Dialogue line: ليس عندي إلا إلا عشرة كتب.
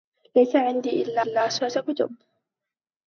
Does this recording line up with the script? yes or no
yes